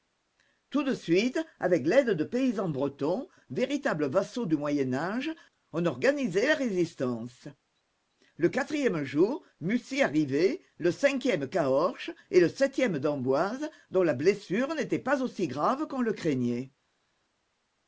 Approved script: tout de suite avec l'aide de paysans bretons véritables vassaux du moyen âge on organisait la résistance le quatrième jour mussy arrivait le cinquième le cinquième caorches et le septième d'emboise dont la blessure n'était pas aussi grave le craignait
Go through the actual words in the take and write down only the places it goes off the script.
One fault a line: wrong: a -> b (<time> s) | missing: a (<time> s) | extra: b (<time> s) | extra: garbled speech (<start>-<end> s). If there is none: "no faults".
missing: le cinquième (11.5 s)
extra: qu'on (15.9 s)